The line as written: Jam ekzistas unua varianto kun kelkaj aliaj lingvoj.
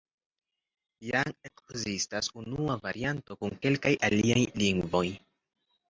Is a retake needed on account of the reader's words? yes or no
no